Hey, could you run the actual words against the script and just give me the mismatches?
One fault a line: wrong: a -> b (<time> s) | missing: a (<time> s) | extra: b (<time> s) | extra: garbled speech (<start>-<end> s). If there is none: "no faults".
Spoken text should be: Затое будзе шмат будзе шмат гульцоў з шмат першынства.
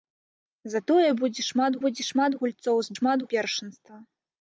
no faults